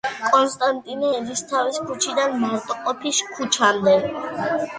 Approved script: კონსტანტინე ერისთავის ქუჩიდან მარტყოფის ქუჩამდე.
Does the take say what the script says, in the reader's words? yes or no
yes